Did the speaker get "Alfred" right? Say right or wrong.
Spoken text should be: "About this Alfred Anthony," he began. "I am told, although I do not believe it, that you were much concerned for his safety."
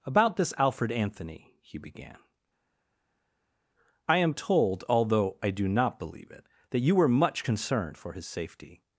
right